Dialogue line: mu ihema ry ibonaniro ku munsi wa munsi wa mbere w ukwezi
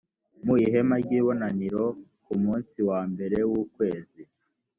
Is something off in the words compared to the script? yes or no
yes